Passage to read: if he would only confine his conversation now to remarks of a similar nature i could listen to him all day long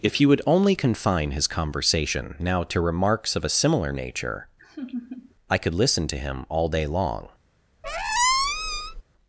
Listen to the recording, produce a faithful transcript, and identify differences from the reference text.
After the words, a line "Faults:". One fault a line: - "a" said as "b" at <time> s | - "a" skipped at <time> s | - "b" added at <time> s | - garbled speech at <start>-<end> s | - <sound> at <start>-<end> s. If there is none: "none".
if he would only confine his conversation now to remarks of a similar nature i could listen to him all day long
Faults:
- laugh at 4.6-5.3 s
- squeak at 7.8-9.0 s